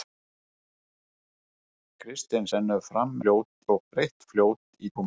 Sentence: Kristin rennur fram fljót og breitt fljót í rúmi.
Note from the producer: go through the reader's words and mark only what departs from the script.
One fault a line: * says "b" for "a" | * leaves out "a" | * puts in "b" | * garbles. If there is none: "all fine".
all fine